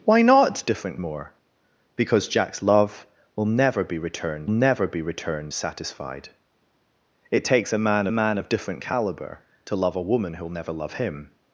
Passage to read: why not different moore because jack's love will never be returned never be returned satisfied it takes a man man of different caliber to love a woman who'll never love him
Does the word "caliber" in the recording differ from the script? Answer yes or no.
no